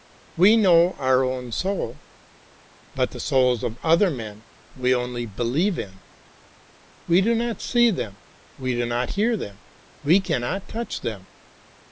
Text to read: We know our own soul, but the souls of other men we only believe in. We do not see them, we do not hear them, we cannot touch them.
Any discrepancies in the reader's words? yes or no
no